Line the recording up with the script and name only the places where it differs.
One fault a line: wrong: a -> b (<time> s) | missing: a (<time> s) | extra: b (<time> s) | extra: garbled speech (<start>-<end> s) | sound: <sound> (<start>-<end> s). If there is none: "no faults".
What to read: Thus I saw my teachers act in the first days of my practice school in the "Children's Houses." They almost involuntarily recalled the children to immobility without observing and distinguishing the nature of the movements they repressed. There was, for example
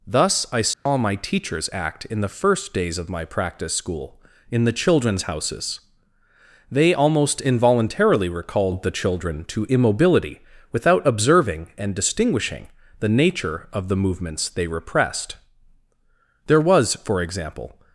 sound: dropout (0.7-0.9 s)